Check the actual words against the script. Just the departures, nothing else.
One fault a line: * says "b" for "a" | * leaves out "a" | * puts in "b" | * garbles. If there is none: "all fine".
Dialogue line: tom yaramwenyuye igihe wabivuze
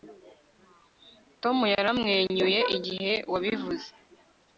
all fine